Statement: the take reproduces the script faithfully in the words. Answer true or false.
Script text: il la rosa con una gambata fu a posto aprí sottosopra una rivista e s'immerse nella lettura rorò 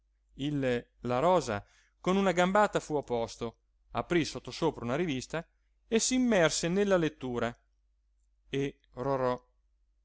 false